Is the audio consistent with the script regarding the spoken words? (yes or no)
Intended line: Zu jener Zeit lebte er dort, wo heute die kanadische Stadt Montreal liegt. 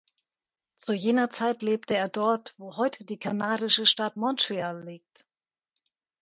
yes